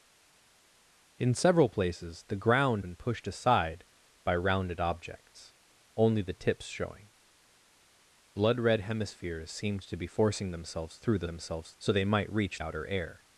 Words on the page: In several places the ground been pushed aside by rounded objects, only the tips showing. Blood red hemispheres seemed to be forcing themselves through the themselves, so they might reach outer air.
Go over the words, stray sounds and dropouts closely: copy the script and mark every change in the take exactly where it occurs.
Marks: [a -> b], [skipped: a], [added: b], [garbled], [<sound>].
In several places the ground been pushed aside by rounded objects, only the tips showing. Blood red hemispheres seemed to be forcing themselves through the themselves, so they might reach outer air.